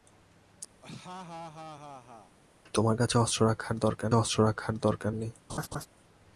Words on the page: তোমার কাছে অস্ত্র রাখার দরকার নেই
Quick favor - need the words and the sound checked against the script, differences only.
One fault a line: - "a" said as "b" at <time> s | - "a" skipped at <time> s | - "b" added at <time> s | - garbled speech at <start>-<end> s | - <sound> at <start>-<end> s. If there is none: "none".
- laugh at 0.8-2.4 s
- "অস্ত্র রাখার দরকার" added at 4.1 s
- laugh at 5.5-5.9 s